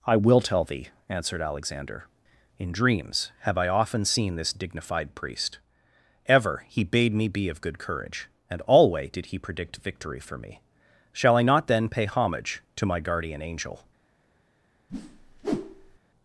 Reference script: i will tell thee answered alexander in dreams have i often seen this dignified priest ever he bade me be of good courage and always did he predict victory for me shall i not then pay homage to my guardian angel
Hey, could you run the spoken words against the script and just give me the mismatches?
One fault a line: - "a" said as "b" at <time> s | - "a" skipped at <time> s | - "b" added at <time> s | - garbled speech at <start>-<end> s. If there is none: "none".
- "always" said as "alway" at 8.7 s